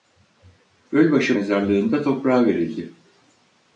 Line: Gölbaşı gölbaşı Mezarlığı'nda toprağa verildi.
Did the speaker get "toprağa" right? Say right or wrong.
right